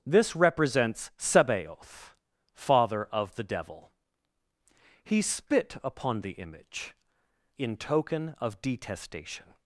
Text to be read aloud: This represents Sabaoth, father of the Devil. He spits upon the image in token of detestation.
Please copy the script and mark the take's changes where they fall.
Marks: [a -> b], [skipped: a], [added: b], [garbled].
This represents Sabaoth, father of the Devil. He [spits -> spit] upon the image in token of detestation.